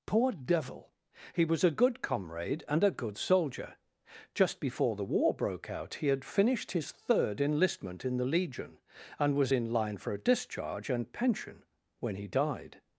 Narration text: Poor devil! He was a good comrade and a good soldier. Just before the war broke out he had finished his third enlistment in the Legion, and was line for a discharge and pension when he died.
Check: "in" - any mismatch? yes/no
no